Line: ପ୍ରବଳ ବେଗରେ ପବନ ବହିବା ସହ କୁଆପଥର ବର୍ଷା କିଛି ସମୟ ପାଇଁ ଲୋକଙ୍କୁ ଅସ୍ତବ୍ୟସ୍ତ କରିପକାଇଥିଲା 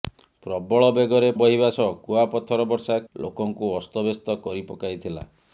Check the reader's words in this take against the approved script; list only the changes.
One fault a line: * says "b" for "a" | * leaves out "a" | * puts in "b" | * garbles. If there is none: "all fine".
* leaves out "ପବନ"
* leaves out "କିଛି ସମୟ ପାଇଁ"